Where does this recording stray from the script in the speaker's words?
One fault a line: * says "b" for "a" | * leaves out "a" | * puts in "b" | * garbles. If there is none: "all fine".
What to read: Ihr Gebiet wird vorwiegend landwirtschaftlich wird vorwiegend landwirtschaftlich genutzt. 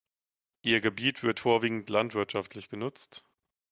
* leaves out "wird vorwiegend landwirtschaftlich"